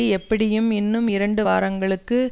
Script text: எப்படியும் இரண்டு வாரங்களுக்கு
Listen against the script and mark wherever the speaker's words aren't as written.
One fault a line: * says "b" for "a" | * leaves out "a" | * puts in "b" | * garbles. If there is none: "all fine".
* puts in "இன்னும்"